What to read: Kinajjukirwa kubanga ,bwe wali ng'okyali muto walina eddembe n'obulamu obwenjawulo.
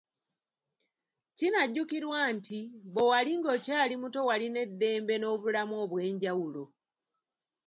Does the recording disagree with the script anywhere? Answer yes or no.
yes